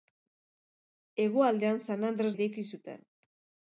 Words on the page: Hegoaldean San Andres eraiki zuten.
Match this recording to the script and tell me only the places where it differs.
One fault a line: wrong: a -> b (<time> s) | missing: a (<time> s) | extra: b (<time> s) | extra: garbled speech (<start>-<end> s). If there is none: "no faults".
no faults